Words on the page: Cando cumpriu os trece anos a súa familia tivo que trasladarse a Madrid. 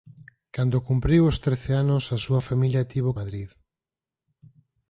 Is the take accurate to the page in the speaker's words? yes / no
no